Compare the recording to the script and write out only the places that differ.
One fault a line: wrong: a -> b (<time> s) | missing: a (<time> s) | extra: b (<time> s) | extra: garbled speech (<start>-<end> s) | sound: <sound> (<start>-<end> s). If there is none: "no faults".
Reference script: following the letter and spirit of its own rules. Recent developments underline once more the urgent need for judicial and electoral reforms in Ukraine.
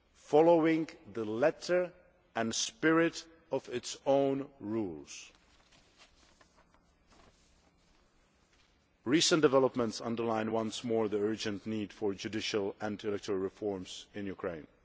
no faults